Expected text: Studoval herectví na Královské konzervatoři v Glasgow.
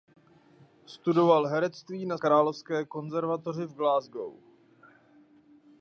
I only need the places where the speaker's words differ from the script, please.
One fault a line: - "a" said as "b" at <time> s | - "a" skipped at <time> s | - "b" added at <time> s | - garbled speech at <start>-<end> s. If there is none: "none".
none